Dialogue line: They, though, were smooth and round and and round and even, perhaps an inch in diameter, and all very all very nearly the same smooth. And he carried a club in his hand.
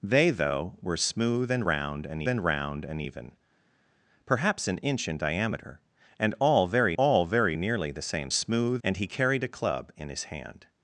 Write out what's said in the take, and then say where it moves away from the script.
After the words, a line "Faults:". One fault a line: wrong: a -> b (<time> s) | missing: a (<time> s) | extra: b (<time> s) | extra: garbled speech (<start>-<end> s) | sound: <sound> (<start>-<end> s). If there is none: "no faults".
They, though, were smooth and round and and round and even, perhaps an inch in diameter, and all very all very nearly the same smooth. And he carried a club in his hand.
Faults:
no faults